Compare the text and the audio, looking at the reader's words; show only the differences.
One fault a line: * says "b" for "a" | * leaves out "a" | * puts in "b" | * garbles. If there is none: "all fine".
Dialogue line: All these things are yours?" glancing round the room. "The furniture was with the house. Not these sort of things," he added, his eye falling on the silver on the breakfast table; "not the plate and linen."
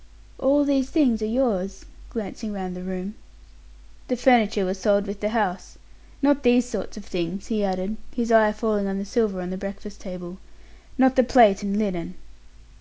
* puts in "sold"